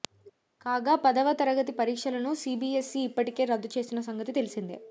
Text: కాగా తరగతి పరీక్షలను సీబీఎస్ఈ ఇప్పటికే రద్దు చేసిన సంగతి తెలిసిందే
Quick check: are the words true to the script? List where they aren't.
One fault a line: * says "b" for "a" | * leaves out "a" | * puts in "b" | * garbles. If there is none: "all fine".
* puts in "పదవ"